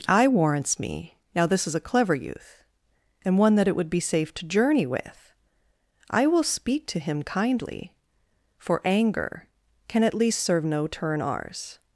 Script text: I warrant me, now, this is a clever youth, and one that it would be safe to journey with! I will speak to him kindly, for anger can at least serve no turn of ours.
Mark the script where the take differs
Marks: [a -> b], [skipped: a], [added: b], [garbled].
I [warrant -> warrants] me, now, this is a clever youth, and one that it would be safe to journey with! I will speak to him kindly, for anger can at least serve no turn [skipped: of] ours.